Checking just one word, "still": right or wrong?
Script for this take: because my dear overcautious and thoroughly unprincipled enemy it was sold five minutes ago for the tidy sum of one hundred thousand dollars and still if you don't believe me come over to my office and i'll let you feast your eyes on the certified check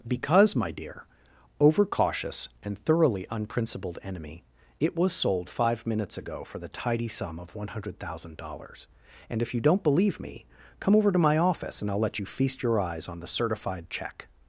wrong